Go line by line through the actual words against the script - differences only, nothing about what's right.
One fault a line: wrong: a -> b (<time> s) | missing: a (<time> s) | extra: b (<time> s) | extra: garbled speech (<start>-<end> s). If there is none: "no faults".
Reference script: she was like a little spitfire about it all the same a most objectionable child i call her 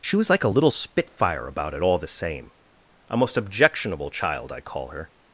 no faults